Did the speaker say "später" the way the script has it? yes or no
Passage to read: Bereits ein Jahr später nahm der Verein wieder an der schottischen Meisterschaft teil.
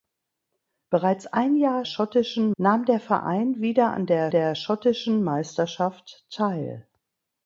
no